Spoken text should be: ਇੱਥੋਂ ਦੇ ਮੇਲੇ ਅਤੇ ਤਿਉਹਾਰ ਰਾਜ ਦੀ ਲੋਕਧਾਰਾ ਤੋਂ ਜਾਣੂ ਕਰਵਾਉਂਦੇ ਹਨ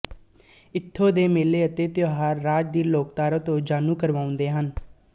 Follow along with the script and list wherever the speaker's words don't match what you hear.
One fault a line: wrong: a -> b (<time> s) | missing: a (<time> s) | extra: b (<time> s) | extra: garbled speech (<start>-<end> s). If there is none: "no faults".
no faults